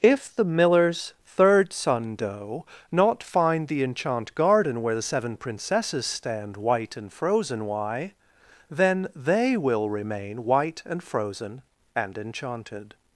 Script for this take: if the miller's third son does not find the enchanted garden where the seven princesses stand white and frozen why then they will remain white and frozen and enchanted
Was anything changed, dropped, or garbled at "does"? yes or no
yes